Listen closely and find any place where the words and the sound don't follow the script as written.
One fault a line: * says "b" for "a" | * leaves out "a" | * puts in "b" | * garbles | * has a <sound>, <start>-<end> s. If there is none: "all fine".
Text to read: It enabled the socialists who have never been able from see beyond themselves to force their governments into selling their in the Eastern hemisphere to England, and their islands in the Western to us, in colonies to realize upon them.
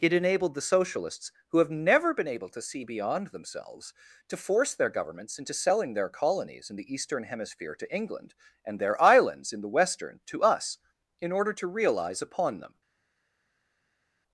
* says "to" for "from"
* puts in "colonies"
* says "order" for "colonies"